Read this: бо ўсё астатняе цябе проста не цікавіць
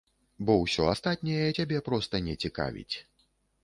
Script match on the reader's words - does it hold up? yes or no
yes